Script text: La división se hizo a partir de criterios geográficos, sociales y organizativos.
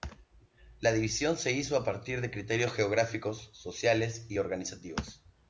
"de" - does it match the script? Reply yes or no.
yes